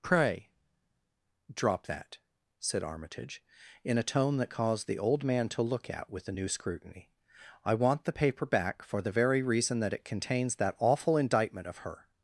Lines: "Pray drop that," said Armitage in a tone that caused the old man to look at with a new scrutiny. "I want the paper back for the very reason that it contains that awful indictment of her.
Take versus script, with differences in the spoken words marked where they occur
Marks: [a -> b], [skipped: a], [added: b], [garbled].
"Pray drop that," said Armitage in a tone that caused the old man to look at with a new scrutiny. "I want the paper back for the very reason that it contains that awful indictment of her.